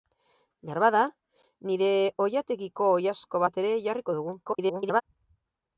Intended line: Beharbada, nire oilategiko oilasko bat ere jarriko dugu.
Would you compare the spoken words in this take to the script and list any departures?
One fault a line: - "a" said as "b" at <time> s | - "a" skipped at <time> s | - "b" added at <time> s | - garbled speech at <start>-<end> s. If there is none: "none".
- garbled speech at 4.4-5.0 s